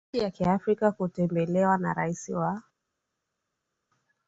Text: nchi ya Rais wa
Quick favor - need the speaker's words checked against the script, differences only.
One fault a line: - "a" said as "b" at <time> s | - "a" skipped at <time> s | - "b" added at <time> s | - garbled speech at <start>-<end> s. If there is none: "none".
- "Kiafrika kutembelewa na" added at 0.3 s